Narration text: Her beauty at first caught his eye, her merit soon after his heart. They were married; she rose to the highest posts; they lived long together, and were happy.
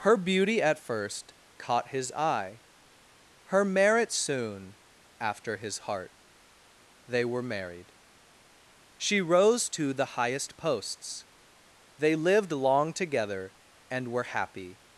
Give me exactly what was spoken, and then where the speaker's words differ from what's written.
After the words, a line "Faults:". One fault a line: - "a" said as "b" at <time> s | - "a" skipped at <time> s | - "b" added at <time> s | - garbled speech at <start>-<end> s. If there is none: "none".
Her beauty at first caught his eye, her merit soon after his heart. They were married; she rose to the highest posts; they lived long together, and were happy.
Faults:
none